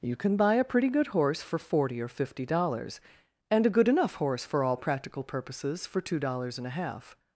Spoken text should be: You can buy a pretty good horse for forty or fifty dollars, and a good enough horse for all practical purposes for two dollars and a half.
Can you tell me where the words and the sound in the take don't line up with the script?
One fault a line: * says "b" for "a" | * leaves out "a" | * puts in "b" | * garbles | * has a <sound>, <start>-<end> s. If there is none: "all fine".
all fine